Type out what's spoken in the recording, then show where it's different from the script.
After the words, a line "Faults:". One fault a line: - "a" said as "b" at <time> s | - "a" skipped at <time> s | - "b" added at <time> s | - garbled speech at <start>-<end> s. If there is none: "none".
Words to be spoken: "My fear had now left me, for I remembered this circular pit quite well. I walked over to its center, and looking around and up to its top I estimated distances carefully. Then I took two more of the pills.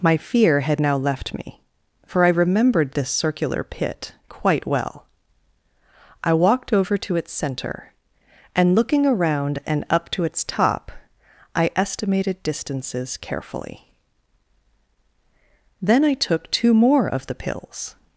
"My fear had now left me, for I remembered this circular pit quite well. I walked over to its center, and looking around and up to its top I estimated distances carefully. Then I took two more of the pills.
Faults:
none